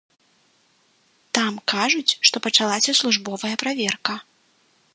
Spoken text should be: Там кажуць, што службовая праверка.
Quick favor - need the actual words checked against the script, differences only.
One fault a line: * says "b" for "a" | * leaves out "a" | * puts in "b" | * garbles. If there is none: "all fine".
* puts in "пачалася"